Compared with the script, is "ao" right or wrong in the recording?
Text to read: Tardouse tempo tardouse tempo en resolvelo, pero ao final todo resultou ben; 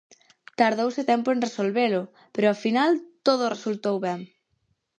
right